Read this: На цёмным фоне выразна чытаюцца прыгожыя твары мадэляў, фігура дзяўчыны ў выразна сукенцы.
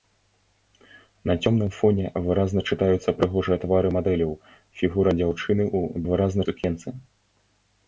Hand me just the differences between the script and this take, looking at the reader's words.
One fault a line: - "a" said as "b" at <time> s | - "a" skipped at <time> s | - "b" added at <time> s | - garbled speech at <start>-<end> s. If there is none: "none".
none